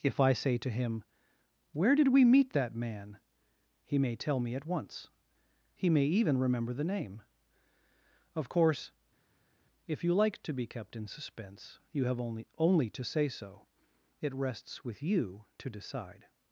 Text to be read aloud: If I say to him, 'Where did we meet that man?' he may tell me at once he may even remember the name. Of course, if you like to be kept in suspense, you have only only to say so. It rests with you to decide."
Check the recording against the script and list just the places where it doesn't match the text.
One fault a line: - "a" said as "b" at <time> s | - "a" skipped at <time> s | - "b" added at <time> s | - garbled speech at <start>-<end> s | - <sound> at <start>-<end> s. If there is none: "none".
none